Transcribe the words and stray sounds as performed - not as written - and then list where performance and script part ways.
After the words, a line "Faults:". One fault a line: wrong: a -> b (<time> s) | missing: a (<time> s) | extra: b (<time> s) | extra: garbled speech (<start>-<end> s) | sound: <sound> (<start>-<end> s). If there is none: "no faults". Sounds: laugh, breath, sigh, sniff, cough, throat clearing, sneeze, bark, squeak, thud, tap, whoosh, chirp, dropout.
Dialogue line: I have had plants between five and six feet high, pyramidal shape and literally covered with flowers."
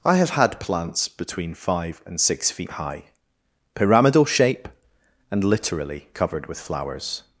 I have had plants between five and six feet high, pyramidal shape and literally covered with flowers."
Faults:
no faults